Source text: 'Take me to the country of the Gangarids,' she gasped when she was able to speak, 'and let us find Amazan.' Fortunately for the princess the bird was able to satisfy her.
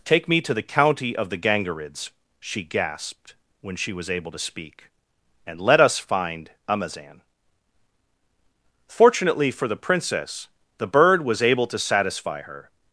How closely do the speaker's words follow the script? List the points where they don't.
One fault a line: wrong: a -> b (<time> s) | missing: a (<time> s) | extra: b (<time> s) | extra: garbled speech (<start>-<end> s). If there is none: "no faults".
wrong: country -> county (0.6 s)